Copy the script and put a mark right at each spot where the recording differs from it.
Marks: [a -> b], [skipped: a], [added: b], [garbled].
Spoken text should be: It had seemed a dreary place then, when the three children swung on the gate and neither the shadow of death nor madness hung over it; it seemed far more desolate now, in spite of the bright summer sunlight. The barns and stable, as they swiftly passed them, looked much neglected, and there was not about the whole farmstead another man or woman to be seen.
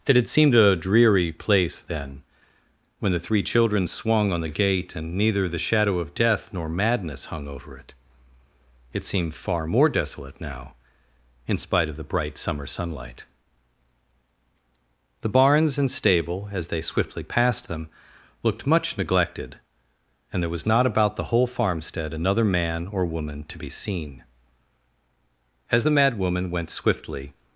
It had seemed a dreary place then, when the three children swung on the gate and neither the shadow of death nor madness hung over it; it seemed far more desolate now, in spite of the bright summer sunlight. The barns and stable, as they swiftly passed them, looked much neglected, and there was not about the whole farmstead another man or woman to be seen. [added: As the mad woman went swiftly]